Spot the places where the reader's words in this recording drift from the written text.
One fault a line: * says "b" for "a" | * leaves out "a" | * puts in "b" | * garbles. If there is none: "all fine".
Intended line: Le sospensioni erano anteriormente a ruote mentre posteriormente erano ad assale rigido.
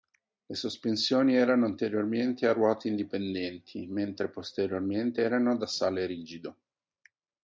* puts in "indipendenti"